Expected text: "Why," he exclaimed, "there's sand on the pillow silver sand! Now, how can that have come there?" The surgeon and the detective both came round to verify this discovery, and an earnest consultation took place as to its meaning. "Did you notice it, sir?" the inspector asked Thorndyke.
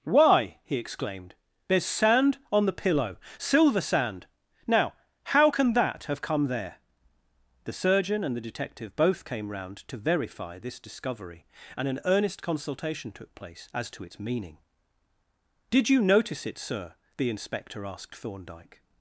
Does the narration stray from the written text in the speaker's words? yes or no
no